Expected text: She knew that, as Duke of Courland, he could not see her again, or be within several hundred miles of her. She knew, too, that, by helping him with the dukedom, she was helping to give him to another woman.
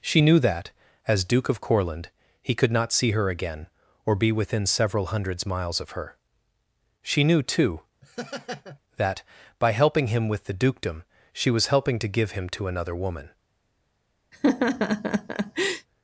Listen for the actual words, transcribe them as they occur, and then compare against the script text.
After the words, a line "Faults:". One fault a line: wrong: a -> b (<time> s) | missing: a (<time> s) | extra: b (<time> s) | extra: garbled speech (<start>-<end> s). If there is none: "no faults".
She knew that, as Duke of Courland, he could not see her again, or be within several hundreds miles of her. She knew, too, that, by helping him with the dukedom, she was helping to give him to another woman.
Faults:
wrong: hundred -> hundreds (5.1 s)